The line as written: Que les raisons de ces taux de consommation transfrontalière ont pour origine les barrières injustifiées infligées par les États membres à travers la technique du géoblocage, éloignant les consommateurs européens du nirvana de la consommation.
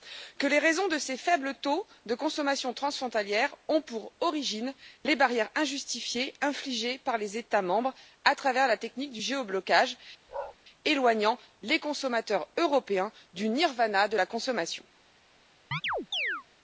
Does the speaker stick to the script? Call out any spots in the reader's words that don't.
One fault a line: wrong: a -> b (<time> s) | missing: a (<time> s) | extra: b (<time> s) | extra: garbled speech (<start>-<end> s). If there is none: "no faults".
extra: faibles (1.2 s)